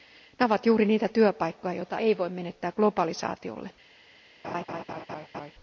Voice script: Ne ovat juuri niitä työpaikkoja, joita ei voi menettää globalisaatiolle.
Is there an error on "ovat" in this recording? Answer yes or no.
no